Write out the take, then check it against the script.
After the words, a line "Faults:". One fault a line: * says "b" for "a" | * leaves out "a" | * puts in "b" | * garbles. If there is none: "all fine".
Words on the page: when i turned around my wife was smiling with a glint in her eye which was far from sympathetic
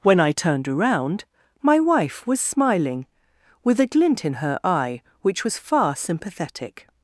when i turned around my wife was smiling with a glint in her eye which was far sympathetic
Faults:
* leaves out "from"